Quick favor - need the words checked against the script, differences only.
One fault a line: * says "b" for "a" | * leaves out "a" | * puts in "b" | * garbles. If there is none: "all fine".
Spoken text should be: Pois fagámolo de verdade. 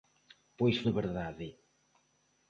* leaves out "fagámolo"